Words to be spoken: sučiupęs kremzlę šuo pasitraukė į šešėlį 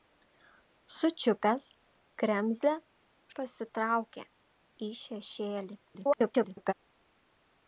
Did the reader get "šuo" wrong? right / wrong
wrong